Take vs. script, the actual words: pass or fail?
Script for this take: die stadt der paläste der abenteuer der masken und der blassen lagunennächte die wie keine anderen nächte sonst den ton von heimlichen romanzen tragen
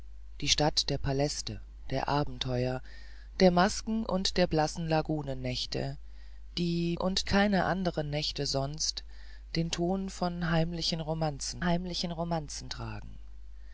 fail